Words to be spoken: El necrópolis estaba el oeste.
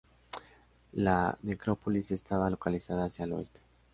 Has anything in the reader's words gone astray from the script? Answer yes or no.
yes